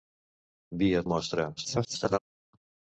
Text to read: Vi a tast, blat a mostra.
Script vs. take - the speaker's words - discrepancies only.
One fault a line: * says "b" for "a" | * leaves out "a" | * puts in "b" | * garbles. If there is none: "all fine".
* leaves out "tast blat"
* garbles